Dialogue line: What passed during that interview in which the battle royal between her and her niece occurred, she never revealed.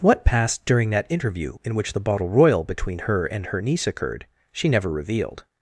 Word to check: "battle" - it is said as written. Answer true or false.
false